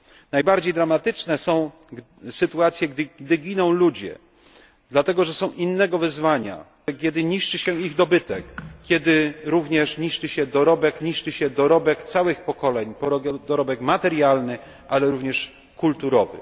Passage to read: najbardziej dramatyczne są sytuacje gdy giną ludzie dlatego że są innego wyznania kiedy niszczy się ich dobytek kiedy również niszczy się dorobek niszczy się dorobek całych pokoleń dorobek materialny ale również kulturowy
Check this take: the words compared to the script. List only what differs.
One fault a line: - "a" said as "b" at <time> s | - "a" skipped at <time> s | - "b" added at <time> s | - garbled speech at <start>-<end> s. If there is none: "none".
none